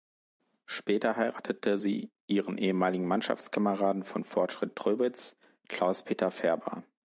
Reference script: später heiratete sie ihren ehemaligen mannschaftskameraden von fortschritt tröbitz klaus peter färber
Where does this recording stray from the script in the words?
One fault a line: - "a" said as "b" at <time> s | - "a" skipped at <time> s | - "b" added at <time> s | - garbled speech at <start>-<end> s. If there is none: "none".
none